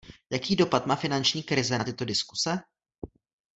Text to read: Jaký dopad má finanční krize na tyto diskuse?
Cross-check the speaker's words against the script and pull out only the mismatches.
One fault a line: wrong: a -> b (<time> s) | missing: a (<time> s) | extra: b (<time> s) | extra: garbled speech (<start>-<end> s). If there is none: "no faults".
no faults